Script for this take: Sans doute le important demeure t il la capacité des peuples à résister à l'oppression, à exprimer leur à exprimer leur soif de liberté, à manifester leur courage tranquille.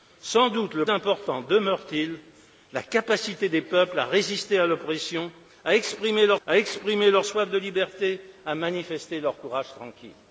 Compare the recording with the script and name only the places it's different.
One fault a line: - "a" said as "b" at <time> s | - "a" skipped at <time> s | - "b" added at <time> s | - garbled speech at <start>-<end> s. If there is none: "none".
none